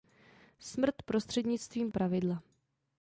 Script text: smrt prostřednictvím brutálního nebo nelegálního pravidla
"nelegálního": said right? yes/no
no